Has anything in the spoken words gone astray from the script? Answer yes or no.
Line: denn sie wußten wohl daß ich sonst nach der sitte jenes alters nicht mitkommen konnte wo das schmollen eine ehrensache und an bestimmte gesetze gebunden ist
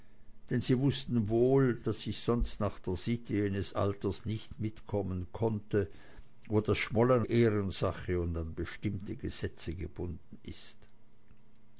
yes